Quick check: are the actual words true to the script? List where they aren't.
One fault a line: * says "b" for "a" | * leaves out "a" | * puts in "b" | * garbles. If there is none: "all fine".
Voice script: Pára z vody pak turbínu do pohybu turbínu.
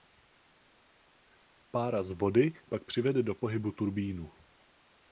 * says "přivede" for "turbínu"